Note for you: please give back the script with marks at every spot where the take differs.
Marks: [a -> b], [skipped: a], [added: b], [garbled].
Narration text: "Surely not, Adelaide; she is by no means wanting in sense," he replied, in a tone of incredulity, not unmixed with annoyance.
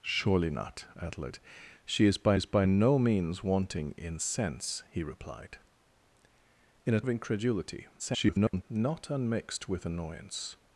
"Surely not, Adelaide; she is by [added: is by] no means wanting in sense," he replied, in a [skipped: tone] of incredulity, [garbled] not unmixed with annoyance.